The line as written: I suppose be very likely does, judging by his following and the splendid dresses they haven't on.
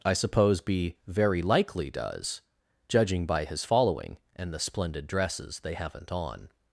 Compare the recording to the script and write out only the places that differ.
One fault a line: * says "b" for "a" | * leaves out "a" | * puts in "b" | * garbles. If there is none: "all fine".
all fine